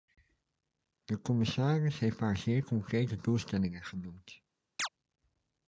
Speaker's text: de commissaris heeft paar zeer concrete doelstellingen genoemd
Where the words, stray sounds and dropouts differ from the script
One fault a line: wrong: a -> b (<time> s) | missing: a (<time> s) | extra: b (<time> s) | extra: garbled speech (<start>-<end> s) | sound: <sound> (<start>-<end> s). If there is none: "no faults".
sound: chirp (4.8-4.9 s)